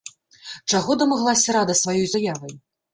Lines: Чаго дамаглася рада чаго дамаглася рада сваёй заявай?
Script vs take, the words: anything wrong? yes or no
yes